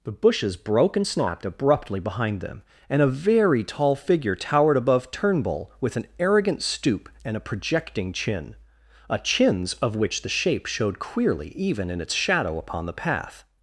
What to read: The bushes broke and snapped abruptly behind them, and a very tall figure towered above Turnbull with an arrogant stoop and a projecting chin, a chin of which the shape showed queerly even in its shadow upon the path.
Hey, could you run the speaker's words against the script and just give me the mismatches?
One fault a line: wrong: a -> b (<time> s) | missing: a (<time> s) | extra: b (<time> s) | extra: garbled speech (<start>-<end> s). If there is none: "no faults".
wrong: chin -> chins (9.2 s)